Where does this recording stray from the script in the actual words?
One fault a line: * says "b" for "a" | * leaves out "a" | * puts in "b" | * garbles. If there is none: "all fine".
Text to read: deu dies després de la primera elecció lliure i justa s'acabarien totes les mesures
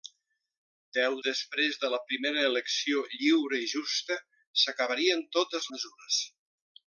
* leaves out "dies"
* leaves out "les"